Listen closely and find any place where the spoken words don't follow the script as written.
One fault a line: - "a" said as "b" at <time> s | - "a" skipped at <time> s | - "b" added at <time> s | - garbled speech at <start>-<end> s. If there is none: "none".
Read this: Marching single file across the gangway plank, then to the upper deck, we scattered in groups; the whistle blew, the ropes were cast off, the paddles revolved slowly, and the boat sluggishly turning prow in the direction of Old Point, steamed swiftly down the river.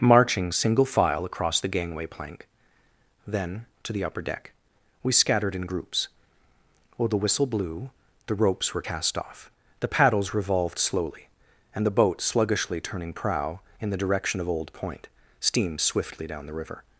- "while" added at 7.0 s